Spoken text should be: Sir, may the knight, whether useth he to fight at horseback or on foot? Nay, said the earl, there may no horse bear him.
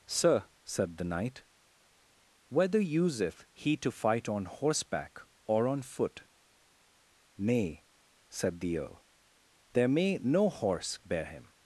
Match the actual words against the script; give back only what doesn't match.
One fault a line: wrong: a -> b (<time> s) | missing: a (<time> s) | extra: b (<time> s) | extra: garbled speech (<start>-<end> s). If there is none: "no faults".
wrong: may -> said (0.6 s)
wrong: at -> on (4.3 s)